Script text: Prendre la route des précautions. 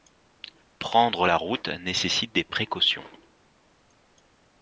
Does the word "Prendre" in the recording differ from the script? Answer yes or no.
no